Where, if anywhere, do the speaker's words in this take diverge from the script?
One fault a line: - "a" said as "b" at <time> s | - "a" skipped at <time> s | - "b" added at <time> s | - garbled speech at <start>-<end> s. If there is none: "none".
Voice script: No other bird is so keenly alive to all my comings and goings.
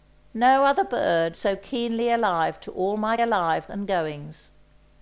- "is" skipped at 1.4 s
- "comings" said as "alive" at 3.2 s